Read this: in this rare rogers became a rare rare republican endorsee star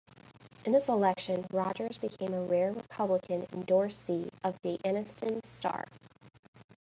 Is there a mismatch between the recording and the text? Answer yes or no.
yes